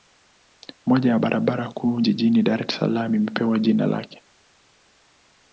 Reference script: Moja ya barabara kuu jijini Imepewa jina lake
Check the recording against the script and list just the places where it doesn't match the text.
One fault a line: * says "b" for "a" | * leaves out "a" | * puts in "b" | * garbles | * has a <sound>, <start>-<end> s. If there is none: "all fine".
* puts in "Dar es Salaam"